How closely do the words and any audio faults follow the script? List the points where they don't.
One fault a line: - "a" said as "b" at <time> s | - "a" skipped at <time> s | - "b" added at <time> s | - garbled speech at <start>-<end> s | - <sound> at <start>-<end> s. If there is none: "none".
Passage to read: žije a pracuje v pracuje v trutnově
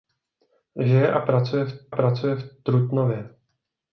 none